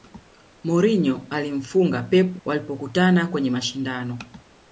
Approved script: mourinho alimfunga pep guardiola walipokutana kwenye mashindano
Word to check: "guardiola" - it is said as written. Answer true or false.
false